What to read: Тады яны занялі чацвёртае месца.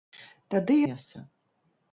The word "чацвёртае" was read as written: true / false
false